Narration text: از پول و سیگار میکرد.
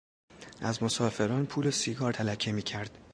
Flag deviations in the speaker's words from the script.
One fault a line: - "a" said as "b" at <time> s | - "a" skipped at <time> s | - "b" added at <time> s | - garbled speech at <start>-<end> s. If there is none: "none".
- "مسافران" added at 0.8 s
- "تلکه" added at 2.1 s